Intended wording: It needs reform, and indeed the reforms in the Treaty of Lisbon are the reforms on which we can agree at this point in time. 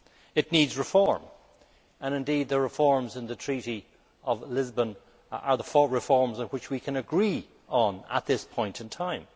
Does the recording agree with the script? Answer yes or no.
yes